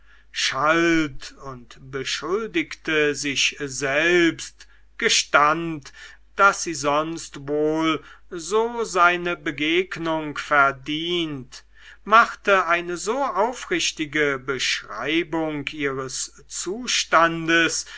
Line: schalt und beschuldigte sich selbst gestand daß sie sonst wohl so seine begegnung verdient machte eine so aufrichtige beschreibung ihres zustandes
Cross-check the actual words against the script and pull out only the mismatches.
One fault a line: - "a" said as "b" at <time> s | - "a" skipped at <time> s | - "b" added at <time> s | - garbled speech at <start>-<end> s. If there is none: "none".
none